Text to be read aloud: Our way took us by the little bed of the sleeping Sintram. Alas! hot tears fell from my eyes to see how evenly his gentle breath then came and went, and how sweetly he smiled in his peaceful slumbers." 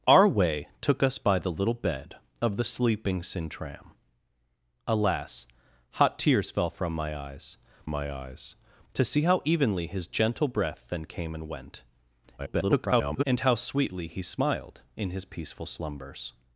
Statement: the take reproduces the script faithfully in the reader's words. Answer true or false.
false